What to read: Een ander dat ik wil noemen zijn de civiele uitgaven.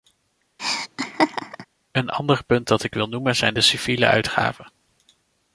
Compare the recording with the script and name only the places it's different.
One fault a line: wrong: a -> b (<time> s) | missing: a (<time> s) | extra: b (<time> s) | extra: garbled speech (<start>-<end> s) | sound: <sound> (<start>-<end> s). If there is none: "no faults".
sound: laugh (0.6-1.7 s)
extra: punt (2.4 s)